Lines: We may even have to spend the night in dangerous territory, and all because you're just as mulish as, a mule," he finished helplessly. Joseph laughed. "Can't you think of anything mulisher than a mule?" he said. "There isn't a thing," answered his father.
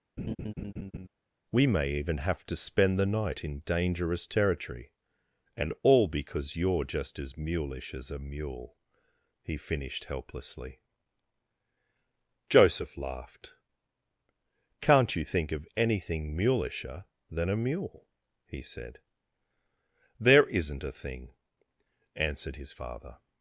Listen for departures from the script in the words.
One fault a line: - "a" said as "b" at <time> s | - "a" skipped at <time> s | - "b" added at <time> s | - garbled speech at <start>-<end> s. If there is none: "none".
none